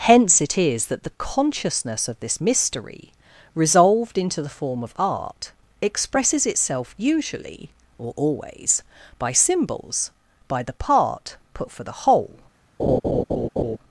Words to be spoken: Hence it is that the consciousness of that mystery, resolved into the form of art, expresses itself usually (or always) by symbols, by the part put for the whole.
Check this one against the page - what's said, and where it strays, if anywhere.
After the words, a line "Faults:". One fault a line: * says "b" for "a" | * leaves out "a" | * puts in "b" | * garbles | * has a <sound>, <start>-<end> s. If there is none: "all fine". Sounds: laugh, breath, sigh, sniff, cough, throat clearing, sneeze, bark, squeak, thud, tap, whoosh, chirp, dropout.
Hence it is that the consciousness of this mystery, resolved into the form of art, expresses itself usually (or always) by symbols, by the part put for the whole.
Faults:
* says "this" for "that"
* has a laugh, 12.8-13.8 s